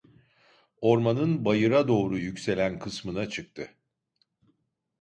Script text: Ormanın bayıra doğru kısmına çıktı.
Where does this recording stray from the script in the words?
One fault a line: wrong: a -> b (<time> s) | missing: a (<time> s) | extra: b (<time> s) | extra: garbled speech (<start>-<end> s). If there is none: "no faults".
extra: yükselen (2.1 s)